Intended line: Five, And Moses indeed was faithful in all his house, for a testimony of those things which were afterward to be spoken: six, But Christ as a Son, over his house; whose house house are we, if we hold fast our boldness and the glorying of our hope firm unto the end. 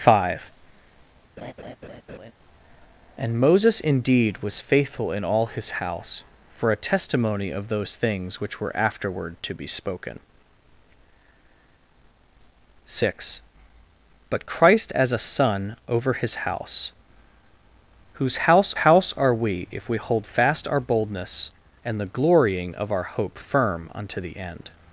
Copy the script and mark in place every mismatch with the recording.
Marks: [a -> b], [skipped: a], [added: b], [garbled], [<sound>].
Five, [laugh] And Moses indeed was faithful in all his house, for a testimony of those things which were afterward to be spoken: six, But Christ as a Son, over his house; whose house house are we, if we hold fast our boldness and the glorying of our hope firm unto the end.